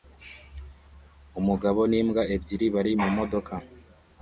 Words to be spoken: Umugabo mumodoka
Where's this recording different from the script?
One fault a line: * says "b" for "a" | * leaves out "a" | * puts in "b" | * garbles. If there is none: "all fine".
* puts in "n'imbwa ebyiri bari"